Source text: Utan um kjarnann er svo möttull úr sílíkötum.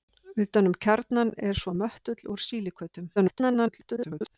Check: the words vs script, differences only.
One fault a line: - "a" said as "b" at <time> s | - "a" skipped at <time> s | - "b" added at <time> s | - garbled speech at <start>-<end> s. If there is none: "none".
- garbled speech at 3.2-4.4 s